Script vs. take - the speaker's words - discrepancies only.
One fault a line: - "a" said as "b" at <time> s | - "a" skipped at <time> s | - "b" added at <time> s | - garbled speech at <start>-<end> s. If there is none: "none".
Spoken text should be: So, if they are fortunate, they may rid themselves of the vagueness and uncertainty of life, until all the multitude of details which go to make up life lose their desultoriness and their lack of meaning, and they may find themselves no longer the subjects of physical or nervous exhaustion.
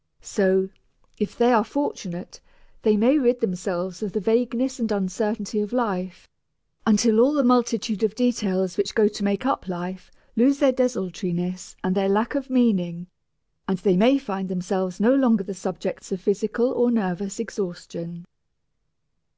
none